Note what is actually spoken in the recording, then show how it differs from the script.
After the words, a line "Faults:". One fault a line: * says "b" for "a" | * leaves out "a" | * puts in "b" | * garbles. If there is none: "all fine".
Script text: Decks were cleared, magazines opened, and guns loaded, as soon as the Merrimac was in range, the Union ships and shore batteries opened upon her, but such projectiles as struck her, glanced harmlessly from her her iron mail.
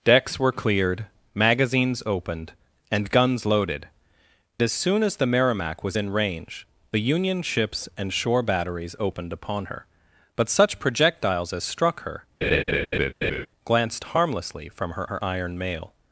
Decks were cleared, magazines opened, and guns loaded, as soon as the Merrimac was in range, the Union ships and shore batteries opened upon her, but such projectiles as struck her, glanced harmlessly from her her iron mail.
Faults:
all fine